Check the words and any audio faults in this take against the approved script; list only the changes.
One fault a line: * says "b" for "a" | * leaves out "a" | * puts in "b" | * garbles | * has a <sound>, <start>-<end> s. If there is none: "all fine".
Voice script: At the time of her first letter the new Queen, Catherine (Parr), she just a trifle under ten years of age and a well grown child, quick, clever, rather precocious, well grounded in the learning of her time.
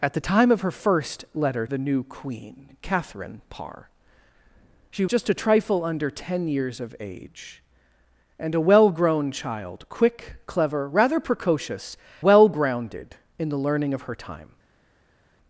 all fine